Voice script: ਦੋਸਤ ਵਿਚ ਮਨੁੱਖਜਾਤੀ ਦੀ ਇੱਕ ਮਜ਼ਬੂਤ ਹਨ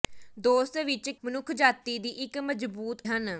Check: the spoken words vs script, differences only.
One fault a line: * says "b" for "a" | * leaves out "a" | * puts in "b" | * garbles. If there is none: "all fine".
all fine